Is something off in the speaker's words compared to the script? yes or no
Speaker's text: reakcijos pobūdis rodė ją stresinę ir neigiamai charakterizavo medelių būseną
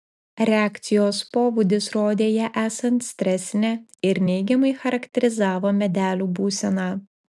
yes